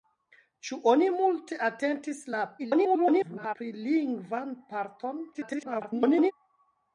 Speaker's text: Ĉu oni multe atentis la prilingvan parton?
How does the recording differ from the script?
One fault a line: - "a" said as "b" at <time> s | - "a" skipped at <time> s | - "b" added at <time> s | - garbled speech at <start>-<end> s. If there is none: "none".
- garbled speech at 2.6-3.6 s
- garbled speech at 5.3-6.3 s